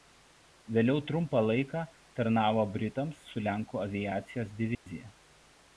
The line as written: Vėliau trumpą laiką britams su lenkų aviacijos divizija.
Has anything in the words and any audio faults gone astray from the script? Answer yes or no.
yes